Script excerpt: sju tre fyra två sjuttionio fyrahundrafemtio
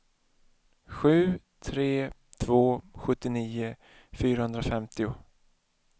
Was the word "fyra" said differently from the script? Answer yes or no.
yes